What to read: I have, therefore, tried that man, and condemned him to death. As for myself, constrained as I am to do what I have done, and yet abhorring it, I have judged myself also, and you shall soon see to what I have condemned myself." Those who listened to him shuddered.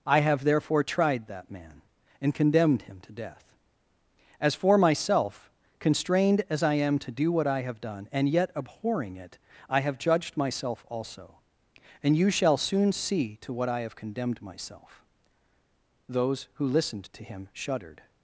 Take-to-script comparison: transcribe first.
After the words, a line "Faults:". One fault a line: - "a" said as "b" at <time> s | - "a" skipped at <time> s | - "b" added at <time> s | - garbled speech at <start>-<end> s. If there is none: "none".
I have, therefore, tried that man, and condemned him to death. As for myself, constrained as I am to do what I have done, and yet abhorring it, I have judged myself also, and you shall soon see to what I have condemned myself." Those who listened to him shuddered.
Faults:
none